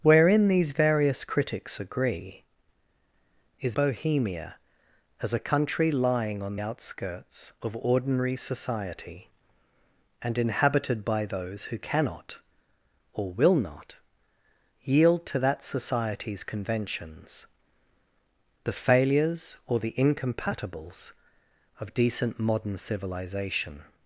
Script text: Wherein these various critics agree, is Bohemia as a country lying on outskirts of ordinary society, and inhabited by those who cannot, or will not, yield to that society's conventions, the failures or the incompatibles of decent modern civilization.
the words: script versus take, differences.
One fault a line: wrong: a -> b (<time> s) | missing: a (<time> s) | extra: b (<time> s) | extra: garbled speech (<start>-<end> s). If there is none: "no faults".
no faults